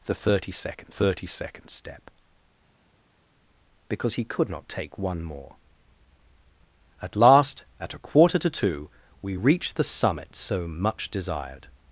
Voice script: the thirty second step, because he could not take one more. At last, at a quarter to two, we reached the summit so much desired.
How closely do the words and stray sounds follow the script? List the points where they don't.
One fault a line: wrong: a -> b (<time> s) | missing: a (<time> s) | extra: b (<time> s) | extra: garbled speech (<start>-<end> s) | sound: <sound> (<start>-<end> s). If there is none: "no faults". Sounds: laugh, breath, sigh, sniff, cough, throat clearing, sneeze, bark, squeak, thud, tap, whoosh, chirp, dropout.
extra: thirty second (0.9 s)